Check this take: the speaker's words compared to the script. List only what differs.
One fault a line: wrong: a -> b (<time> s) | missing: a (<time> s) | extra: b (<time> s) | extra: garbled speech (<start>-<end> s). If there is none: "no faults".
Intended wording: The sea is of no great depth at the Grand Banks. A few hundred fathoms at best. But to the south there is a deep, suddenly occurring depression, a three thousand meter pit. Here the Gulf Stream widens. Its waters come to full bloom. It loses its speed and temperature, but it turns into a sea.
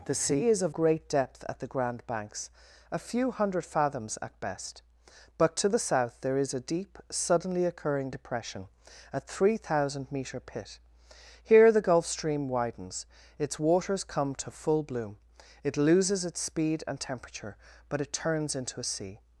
missing: no (0.8 s)